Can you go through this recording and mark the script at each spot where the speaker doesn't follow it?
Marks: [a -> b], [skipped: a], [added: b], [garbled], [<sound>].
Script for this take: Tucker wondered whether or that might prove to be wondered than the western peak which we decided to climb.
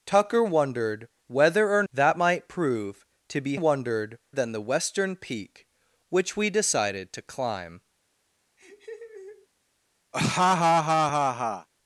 Tucker wondered whether or that might prove to be wondered than the western peak which we decided to climb. [laugh] [laugh]